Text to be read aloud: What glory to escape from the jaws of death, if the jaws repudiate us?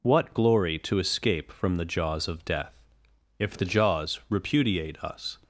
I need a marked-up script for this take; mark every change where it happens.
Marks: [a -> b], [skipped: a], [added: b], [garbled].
What glory to escape from the jaws of death, if the jaws repudiate us?